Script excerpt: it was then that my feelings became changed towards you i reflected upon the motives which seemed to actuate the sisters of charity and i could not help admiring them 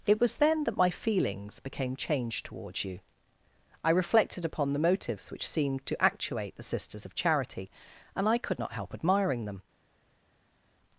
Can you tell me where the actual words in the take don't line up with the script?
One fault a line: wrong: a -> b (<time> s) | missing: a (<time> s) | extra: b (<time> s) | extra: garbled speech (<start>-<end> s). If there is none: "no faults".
no faults